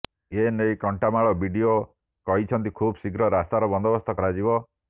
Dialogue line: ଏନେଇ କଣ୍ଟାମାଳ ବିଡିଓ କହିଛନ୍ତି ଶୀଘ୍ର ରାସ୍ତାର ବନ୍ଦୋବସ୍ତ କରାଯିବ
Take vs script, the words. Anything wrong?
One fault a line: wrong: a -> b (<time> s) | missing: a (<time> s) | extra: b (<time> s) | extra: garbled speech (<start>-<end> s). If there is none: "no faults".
extra: ଖୁବ୍ (2.8 s)